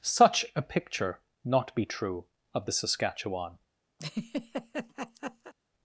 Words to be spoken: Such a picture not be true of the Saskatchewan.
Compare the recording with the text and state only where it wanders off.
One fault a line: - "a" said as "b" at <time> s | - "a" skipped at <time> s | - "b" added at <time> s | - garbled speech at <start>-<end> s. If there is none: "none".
none